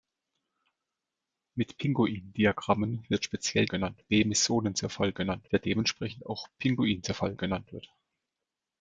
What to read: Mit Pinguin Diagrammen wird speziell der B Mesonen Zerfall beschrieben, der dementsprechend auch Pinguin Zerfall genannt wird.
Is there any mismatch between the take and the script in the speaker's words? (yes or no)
yes